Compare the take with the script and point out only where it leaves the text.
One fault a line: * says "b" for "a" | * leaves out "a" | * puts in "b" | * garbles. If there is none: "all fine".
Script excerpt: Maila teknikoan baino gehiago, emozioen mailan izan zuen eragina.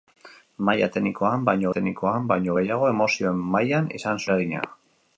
* puts in "teknikoan baino"
* leaves out "zuen"